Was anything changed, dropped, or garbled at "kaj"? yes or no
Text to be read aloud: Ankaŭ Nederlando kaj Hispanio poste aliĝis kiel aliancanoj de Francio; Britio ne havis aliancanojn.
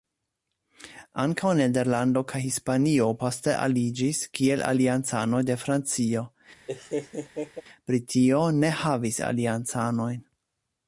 no